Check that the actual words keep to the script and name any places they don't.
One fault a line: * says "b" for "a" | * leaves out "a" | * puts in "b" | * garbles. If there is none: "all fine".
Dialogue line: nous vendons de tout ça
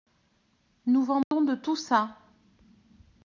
all fine